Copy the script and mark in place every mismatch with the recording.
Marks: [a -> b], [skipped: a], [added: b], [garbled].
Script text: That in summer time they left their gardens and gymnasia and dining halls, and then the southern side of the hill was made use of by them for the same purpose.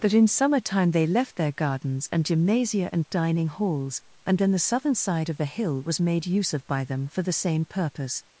That in summer time they left their gardens and gymnasia and dining halls, and then the southern side of the hill was made use of by them for the same purpose.